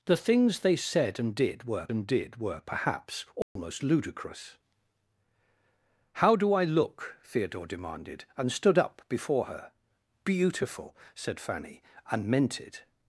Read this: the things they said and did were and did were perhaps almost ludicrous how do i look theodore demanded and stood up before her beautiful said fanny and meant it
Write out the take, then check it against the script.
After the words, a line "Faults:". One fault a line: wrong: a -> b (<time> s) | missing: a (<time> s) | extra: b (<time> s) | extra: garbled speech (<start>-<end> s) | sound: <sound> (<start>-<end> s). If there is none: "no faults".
the things they said and did were and did were perhaps almost ludicrous how do i look theodore demanded and stood up before her beautiful said fanny and meant it
Faults:
sound: dropout (3.4-3.6 s)